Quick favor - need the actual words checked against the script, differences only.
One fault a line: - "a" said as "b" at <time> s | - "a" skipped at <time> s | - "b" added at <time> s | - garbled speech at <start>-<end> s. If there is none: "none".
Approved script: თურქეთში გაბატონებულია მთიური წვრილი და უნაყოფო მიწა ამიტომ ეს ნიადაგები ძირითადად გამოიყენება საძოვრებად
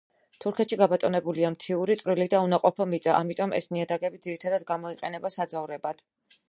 none